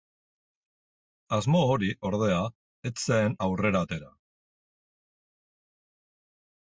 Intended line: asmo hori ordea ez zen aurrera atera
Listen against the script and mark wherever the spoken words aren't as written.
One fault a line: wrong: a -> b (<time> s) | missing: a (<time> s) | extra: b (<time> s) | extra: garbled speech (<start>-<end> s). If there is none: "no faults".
no faults